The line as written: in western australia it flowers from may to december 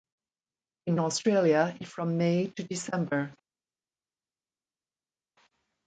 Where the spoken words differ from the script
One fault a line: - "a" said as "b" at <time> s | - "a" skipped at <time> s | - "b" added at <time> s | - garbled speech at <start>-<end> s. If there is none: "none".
- "western" skipped at 1.0 s
- "flowers" skipped at 1.9 s